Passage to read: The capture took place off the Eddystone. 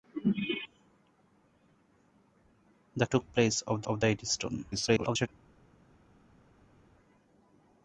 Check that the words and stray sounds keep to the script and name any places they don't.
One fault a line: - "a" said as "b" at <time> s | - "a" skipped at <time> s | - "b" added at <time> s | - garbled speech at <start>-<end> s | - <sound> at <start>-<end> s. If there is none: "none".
- "capture" skipped at 3.0 s
- "off" added at 3.9 s
- garbled speech at 4.7-5.3 s